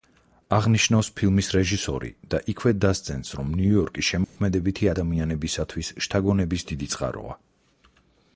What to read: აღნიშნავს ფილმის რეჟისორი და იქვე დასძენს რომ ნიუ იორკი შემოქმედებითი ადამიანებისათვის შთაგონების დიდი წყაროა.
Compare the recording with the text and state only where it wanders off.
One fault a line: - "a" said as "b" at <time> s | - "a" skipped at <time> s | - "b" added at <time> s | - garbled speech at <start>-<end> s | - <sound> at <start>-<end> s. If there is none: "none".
- dropout at 4.2-4.4 s